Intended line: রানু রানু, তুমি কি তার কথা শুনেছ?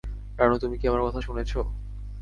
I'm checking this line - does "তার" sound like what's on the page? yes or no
no